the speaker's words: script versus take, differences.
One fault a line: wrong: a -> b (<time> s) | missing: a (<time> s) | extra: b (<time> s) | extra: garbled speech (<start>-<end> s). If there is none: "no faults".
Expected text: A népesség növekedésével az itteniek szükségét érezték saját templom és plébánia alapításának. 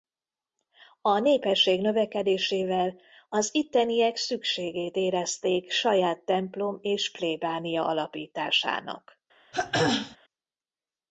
no faults